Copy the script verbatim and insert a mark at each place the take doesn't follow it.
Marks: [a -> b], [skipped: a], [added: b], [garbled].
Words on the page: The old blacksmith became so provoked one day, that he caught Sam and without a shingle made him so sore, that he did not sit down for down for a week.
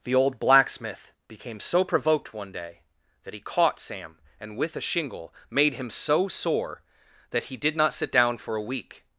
The old blacksmith became so provoked one day, that he caught Sam and [without -> with] a shingle made him so sore, that he did not sit down for [skipped: down for] a week.